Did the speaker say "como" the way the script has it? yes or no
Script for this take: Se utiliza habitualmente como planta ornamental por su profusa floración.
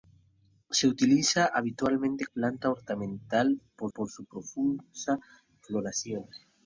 no